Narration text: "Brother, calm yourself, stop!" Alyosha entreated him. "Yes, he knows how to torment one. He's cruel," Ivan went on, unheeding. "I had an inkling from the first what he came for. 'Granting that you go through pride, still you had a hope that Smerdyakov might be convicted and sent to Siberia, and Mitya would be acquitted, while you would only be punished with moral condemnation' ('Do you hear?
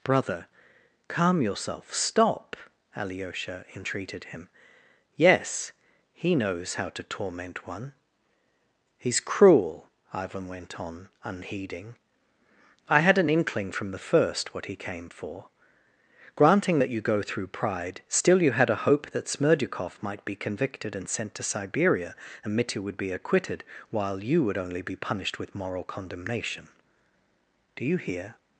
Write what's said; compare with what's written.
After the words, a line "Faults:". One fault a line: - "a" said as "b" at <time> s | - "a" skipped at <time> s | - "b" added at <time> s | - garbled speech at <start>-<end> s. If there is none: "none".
"Brother, calm yourself, stop!" Alyosha entreated him. "Yes, he knows how to torment one. He's cruel," Ivan went on, unheeding. "I had an inkling from the first what he came for. 'Granting that you go through pride, still you had a hope that Smerdyakov might be convicted and sent to Siberia, and Mitya would be acquitted, while you would only be punished with moral condemnation' ('Do you hear?
Faults:
none